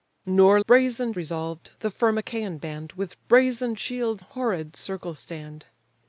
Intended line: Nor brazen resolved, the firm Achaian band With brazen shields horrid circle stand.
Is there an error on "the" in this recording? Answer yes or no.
no